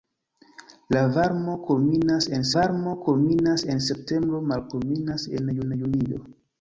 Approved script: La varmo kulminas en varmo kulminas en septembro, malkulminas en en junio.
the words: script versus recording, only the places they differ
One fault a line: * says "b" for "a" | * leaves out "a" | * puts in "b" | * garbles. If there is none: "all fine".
all fine